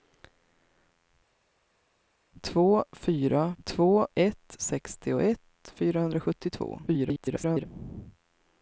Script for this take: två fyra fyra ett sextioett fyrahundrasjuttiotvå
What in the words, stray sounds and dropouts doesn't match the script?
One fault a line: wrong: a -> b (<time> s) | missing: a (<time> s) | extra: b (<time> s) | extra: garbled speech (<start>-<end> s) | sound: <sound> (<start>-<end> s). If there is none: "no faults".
wrong: fyra -> två (3.6 s)
extra: garbled speech (6.9-7.7 s)